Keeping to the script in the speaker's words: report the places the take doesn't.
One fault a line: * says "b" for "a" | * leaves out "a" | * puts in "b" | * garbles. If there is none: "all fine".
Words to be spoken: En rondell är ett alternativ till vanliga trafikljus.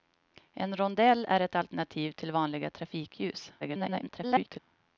* garbles